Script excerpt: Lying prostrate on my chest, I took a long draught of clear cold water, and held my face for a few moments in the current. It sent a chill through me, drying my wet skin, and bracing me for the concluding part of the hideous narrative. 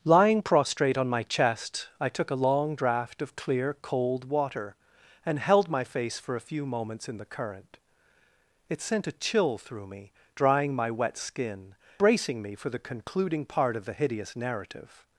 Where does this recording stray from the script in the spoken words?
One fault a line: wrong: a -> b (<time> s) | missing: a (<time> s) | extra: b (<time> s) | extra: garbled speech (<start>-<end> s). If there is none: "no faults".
missing: and (11.8 s)